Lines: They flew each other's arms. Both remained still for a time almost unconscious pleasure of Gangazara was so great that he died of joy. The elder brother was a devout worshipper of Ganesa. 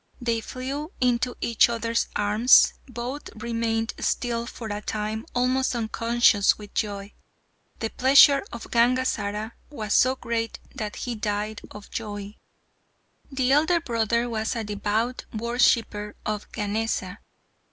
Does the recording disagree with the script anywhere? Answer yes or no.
yes